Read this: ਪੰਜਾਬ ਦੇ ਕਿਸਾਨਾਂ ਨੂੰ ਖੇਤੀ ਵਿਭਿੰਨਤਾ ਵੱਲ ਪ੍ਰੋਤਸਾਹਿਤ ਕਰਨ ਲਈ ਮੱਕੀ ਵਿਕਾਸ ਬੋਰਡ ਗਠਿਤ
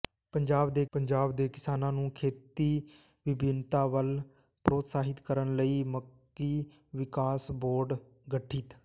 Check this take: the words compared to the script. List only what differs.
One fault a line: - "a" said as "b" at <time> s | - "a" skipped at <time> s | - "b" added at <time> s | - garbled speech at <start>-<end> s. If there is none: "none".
- "ਪੰਜਾਬ ਦੇ" added at 0.9 s